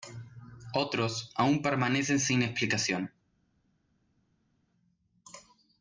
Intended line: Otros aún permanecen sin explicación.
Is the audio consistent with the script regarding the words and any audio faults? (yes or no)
yes